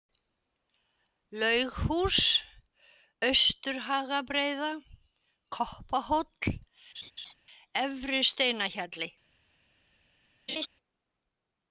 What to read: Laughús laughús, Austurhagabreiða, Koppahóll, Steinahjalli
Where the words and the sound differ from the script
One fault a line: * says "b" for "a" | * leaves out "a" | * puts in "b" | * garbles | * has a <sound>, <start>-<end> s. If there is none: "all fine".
* leaves out "laughús"
* has a laugh, 6.9-7.3 s
* puts in "Efri"
* has a laugh, 10.5-10.7 s